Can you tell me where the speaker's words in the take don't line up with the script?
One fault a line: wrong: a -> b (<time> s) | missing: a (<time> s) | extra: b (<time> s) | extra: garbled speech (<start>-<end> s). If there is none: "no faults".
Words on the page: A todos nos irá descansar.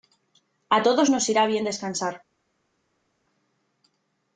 extra: bien (1.5 s)